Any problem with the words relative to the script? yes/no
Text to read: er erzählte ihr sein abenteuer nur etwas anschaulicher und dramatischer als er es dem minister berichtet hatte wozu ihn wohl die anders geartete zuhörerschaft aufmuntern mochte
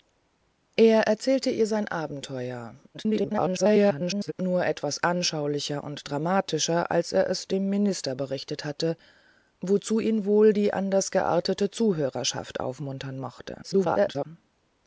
yes